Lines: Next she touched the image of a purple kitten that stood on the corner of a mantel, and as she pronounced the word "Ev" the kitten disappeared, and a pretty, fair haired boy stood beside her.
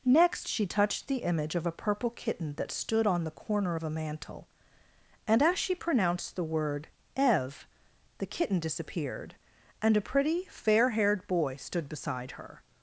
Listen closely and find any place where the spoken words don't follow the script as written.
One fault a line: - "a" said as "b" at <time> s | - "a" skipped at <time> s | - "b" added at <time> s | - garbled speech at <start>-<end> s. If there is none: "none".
none